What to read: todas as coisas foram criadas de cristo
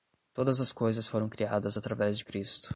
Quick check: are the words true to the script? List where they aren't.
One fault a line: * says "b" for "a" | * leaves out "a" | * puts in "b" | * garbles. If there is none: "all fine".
* puts in "através"